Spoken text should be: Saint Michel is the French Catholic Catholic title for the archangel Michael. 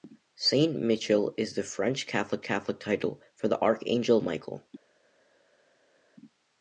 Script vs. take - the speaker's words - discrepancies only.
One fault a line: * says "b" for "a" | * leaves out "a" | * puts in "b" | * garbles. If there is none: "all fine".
all fine